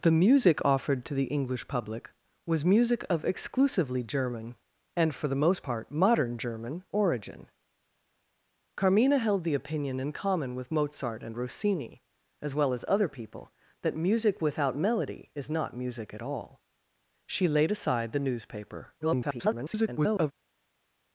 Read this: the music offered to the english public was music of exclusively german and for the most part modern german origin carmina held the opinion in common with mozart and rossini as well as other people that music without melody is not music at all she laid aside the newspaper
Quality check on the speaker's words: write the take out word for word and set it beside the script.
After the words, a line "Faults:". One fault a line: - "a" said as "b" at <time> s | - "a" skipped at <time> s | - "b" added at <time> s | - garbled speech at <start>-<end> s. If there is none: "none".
the music offered to the english public was music of exclusively german and for the most part modern german origin carmina held the opinion in common with mozart and rossini as well as other people that music without melody is not music at all she laid aside the newspaper [garbled]
Faults:
- garbled speech at 19.0-20.3 s